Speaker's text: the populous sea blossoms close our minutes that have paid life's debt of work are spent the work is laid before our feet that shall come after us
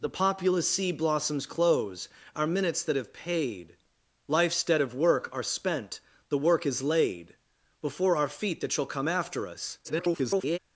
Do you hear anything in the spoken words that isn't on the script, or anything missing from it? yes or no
yes